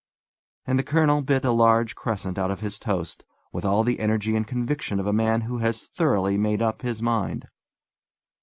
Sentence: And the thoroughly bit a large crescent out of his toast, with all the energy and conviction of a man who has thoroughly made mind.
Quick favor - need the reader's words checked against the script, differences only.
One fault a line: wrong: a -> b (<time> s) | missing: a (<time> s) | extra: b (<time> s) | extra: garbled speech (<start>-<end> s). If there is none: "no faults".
wrong: thoroughly -> colonel (0.8 s)
extra: up his (6.6 s)